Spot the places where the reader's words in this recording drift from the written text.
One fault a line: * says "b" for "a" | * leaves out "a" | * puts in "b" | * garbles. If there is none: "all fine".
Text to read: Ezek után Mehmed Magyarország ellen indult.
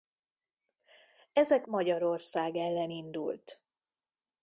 * leaves out "után Mehmed"